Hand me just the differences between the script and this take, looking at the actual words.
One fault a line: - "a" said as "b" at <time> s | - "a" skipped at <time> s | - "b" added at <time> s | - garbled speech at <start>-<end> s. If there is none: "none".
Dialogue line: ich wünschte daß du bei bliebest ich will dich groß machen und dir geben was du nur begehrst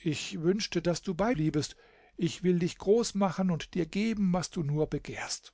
none